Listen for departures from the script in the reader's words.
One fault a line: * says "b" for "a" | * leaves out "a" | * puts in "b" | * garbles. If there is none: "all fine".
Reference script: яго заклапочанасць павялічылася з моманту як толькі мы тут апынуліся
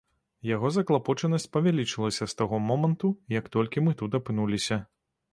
* puts in "таго"